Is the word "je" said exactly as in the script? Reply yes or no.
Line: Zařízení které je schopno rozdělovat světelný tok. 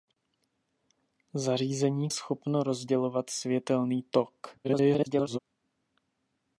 no